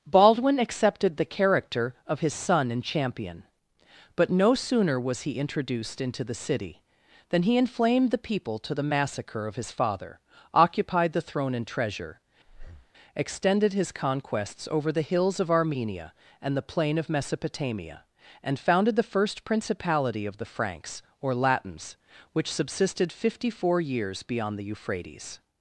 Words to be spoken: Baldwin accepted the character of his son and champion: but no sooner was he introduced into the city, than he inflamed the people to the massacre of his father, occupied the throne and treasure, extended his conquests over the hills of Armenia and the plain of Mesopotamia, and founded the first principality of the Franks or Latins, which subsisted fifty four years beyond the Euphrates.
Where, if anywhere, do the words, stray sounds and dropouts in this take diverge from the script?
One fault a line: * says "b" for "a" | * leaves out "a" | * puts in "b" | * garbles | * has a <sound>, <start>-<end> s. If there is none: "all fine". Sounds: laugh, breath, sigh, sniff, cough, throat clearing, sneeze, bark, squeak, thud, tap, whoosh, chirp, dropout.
* has a breath, 12.5-12.9 s